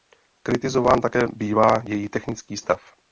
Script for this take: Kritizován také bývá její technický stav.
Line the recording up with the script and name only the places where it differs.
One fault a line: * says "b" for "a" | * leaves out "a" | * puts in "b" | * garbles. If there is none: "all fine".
all fine